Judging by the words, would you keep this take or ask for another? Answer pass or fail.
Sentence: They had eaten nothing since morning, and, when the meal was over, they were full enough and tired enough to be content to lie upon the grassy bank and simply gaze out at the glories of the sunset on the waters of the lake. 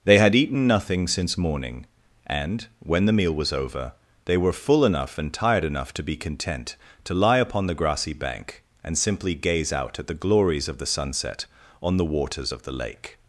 pass